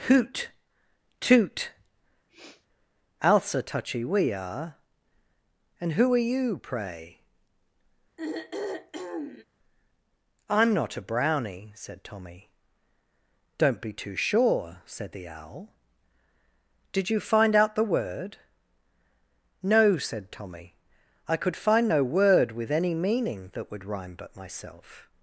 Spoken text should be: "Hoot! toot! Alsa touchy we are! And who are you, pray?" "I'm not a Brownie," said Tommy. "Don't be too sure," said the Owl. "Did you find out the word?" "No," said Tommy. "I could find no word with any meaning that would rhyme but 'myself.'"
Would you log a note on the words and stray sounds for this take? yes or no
yes